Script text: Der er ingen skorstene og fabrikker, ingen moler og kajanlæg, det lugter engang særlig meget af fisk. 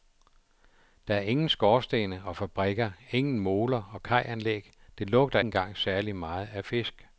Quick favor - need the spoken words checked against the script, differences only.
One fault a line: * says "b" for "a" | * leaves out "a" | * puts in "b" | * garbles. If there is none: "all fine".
all fine